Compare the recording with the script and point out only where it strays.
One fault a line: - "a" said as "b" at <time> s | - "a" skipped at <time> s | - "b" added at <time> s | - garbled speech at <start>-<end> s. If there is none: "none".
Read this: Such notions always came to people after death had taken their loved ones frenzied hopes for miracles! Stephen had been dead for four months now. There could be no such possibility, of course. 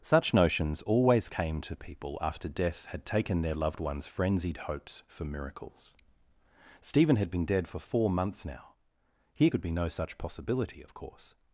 - "There" said as "Here" at 9.3 s